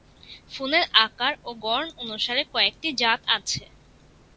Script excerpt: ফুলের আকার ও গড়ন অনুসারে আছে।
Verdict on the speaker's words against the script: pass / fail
fail